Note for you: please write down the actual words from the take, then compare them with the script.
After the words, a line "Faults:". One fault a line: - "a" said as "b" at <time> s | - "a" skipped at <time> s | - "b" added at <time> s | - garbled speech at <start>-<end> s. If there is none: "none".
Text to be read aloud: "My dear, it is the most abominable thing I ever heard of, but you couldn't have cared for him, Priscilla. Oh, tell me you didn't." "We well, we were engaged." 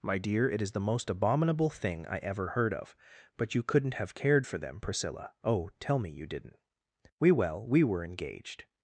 "My dear, it is the most abominable thing I ever heard of, but you couldn't have cared for them, Priscilla. Oh, tell me you didn't." "We well, we were engaged."
Faults:
- "him" said as "them" at 4.6 s